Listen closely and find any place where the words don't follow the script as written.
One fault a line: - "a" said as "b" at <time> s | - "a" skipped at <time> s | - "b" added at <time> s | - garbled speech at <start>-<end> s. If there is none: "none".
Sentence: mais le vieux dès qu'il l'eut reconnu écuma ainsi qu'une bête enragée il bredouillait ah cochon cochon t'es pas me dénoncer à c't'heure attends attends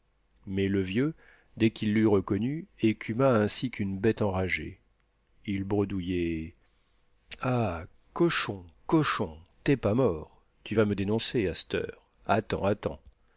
- "mort tu vas" added at 9.9 s